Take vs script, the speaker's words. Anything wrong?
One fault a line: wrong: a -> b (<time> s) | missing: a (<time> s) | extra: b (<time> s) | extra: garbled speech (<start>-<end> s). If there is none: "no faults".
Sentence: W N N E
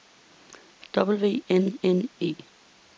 no faults